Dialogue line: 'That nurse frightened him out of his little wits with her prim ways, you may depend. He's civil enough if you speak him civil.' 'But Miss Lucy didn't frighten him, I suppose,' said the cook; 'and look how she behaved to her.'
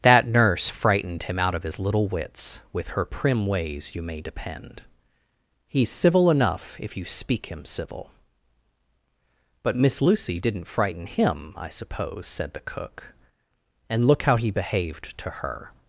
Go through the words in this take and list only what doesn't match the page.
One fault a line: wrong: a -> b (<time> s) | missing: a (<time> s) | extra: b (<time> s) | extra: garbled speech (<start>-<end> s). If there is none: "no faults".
wrong: she -> he (14.4 s)